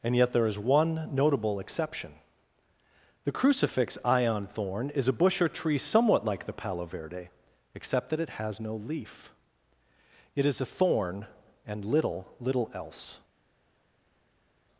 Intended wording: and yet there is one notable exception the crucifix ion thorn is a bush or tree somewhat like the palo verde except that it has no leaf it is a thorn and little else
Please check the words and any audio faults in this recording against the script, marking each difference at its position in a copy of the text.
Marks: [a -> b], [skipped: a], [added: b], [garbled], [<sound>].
and yet there is one notable exception the crucifix ion thorn is a bush or tree somewhat like the palo verde except that it has no leaf it is a thorn and little [added: little] else